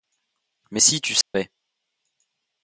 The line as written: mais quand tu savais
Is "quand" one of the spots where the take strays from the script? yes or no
yes